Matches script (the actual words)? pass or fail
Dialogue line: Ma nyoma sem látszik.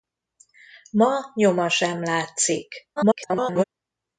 fail